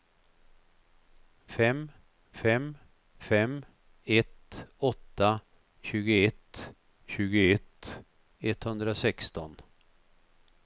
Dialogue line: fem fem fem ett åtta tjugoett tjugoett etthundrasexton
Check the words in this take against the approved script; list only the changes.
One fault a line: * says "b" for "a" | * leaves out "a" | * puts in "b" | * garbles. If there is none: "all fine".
all fine